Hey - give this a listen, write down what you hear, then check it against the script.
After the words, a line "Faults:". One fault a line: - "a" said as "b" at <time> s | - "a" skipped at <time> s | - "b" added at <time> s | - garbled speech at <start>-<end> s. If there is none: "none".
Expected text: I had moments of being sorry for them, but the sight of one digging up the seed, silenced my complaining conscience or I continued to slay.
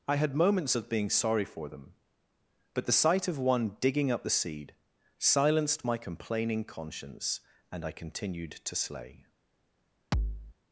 I had moments of being sorry for them, but the sight of one digging up the seed, silenced my complaining conscience and I continued to slay.
Faults:
- "or" said as "and" at 7.7 s